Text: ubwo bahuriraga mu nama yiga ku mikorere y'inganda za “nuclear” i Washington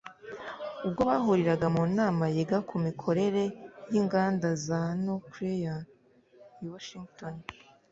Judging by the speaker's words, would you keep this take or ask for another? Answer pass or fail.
pass